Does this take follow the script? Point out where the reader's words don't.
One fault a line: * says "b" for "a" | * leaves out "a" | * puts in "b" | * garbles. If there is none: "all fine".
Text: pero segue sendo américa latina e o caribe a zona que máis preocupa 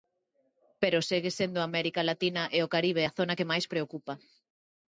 all fine